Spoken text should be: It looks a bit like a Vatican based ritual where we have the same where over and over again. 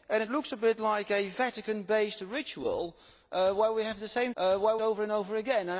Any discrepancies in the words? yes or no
no